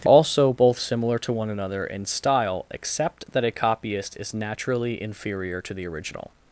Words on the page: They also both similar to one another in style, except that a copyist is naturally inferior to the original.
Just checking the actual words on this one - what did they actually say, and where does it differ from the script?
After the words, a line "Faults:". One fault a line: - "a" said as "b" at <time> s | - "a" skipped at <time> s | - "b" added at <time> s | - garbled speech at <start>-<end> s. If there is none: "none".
They also both similar to one another in style, except that a copyist is naturally inferior to the original.
Faults:
none